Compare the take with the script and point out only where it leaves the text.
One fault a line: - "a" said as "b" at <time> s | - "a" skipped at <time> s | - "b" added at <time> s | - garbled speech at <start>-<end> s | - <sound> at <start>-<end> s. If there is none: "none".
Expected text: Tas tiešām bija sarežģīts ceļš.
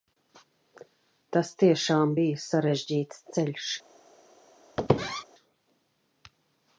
- squeak at 4.8-5.2 s